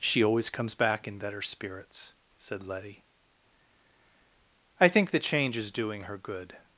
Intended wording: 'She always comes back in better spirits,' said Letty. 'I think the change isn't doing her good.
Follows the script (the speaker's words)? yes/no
no